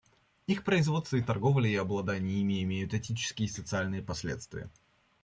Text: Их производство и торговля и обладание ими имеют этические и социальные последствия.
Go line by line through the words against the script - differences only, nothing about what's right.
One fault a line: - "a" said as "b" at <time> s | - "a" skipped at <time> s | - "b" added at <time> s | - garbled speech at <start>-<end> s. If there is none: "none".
none